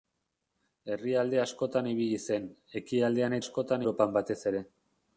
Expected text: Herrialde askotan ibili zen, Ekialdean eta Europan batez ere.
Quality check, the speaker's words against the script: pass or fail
fail